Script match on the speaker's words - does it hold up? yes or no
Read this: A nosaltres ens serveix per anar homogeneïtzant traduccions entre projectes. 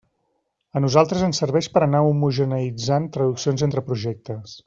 yes